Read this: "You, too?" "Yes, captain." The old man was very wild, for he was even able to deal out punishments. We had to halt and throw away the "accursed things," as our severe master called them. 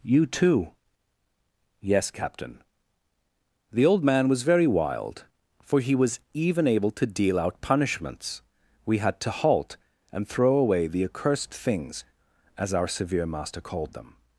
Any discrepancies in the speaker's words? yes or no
no